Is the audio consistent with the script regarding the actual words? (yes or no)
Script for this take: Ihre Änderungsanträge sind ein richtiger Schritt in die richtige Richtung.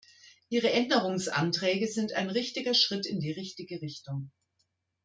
yes